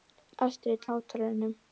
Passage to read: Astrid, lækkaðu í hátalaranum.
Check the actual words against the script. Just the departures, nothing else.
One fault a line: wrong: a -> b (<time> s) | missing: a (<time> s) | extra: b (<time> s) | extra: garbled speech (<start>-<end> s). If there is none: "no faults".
missing: lækkaðu (0.9 s)